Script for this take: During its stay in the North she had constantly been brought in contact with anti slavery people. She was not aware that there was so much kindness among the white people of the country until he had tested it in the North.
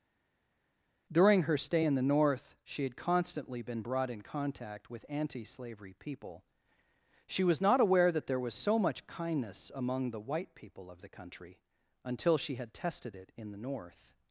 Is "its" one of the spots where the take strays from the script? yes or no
yes